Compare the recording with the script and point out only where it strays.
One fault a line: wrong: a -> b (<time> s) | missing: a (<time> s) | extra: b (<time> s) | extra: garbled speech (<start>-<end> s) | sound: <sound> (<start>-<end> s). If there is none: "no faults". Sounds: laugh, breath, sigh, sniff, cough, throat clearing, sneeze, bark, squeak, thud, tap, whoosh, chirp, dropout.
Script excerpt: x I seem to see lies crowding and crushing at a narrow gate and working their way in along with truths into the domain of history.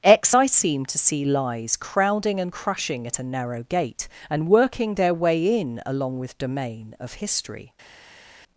missing: truths into the (6.4 s)